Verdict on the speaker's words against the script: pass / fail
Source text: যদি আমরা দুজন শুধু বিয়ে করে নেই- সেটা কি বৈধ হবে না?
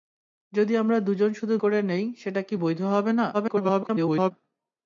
fail